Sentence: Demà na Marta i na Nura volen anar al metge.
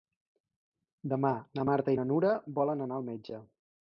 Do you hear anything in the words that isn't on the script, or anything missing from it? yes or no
no